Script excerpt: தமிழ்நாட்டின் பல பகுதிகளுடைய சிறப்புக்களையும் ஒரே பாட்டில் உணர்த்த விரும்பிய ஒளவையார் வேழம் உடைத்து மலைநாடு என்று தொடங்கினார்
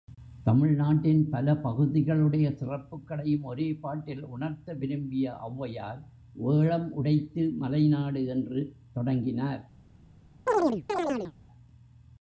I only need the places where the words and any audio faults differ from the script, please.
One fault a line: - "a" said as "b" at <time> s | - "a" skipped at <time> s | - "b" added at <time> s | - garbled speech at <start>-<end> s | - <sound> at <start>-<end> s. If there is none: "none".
- chirp at 10.5-11.3 s